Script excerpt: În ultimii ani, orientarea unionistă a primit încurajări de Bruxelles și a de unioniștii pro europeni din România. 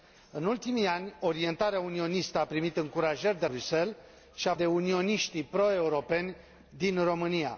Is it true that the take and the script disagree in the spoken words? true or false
false